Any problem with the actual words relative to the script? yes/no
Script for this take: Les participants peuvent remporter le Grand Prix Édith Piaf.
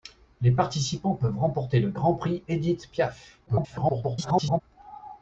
yes